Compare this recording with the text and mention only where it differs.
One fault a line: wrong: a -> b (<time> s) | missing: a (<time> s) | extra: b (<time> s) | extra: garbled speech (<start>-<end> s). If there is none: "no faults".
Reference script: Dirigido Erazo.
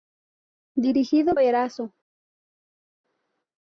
no faults